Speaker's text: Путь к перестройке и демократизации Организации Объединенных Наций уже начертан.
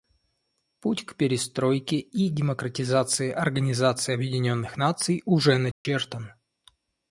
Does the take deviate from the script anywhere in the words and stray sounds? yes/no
yes